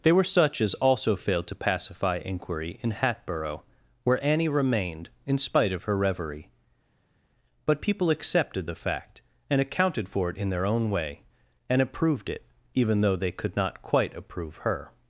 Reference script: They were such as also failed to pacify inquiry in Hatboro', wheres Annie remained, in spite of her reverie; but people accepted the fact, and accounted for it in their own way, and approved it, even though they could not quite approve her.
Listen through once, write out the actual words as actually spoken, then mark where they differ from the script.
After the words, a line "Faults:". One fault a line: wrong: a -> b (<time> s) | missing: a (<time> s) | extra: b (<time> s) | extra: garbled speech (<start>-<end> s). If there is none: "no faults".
They were such as also failed to pacify inquiry in Hatboro', where Annie remained, in spite of her reverie; but people accepted the fact, and accounted for it in their own way, and approved it, even though they could not quite approve her.
Faults:
wrong: wheres -> where (4.0 s)